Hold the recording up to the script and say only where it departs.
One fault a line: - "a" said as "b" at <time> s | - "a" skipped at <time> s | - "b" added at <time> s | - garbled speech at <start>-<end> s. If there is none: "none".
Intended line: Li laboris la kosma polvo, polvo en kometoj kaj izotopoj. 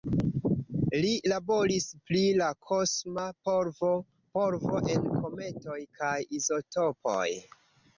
- "pri" added at 2.1 s